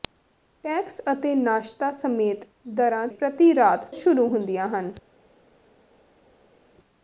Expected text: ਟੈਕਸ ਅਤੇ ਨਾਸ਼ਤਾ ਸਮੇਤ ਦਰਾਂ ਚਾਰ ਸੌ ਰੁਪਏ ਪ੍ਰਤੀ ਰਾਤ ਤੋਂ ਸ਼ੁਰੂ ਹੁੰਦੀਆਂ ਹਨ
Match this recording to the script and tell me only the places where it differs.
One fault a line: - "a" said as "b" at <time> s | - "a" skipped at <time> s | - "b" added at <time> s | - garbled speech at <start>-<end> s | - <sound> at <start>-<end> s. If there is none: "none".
- "ਚਾਰ ਸੌ ਰੁਪਏ" skipped at 3.1 s
- "ਤੋਂ" skipped at 3.8 s